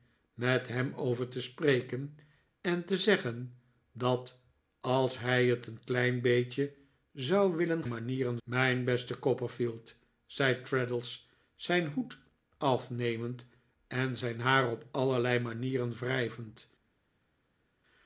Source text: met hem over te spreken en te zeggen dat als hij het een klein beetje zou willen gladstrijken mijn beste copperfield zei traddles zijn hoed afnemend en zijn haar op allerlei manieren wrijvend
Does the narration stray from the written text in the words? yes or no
yes